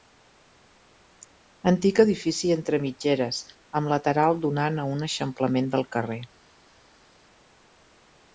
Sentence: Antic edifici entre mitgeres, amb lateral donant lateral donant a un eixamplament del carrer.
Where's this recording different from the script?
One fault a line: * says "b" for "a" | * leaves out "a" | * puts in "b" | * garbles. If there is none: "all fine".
* leaves out "lateral donant"